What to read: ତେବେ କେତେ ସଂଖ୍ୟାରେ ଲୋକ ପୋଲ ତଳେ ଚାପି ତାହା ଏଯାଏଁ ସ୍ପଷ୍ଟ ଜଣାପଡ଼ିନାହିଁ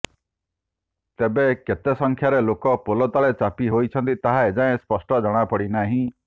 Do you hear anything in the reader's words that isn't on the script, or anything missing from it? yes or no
yes